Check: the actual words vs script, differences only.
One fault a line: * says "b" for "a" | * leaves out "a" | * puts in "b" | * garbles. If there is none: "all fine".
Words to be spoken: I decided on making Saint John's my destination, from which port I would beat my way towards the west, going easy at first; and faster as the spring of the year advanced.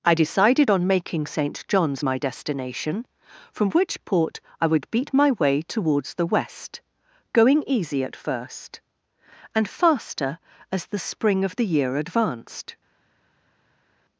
all fine